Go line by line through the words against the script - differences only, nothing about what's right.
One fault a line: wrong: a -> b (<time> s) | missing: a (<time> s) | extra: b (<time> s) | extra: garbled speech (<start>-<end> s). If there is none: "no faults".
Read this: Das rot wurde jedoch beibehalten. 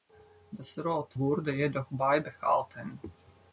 no faults